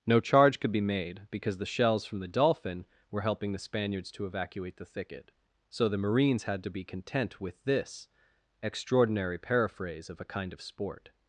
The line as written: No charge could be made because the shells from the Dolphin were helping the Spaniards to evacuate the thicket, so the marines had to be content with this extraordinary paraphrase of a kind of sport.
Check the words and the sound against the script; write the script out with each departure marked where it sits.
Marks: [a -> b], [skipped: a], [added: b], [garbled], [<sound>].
No charge could be made because the shells from the Dolphin were helping the Spaniards to evacuate the thicket, so the marines had to be content with this extraordinary paraphrase of a kind of sport.